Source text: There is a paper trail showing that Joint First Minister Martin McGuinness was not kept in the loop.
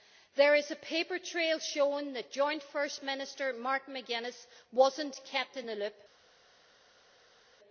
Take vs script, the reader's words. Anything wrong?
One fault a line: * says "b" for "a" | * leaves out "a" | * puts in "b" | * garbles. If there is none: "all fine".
all fine